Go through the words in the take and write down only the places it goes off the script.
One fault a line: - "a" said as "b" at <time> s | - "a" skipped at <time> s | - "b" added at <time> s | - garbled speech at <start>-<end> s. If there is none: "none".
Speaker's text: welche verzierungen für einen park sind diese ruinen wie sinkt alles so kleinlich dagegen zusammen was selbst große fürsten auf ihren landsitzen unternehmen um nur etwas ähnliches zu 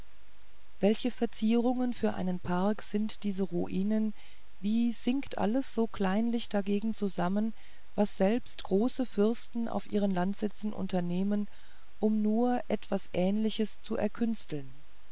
none